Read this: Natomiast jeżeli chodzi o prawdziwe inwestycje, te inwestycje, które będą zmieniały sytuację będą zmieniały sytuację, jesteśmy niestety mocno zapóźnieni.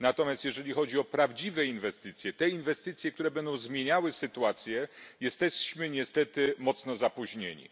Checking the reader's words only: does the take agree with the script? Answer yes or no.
no